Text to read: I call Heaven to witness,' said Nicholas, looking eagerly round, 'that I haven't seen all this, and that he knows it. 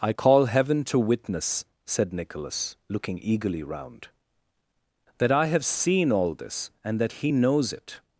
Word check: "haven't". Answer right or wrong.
wrong